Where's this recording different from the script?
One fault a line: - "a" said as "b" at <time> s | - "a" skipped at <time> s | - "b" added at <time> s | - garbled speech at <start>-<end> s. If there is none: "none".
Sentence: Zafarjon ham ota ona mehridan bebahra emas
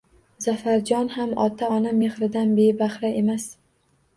none